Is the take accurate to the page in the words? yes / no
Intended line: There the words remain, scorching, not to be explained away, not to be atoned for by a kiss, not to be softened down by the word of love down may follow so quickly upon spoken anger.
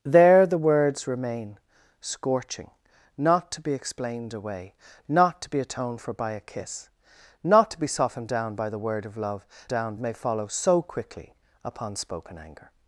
yes